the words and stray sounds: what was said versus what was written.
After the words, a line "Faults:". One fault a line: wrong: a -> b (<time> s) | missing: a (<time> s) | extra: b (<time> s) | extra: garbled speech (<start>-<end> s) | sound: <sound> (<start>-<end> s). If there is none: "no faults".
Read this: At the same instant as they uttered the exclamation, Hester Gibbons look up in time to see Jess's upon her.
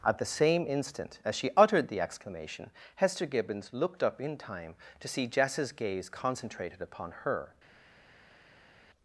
At the same instant as she uttered the exclamation, Hester Gibbons looked up in time to see Jess's gaze concentrated upon her.
Faults:
wrong: they -> she (1.3 s)
wrong: look -> looked (3.7 s)
extra: gaze concentrated (5.7 s)